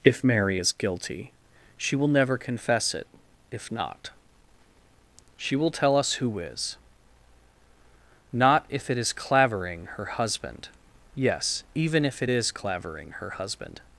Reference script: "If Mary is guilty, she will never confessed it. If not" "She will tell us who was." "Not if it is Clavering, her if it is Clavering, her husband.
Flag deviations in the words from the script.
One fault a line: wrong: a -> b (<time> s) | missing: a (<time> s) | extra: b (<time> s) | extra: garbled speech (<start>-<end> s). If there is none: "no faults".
wrong: confessed -> confess (2.4 s)
wrong: was -> is (6.4 s)
extra: husband Yes even (10.0 s)